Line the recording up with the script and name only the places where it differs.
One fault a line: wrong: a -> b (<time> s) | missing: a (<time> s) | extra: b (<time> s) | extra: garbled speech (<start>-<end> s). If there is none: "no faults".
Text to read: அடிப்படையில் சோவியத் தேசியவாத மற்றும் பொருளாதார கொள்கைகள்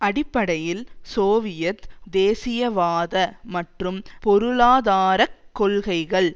no faults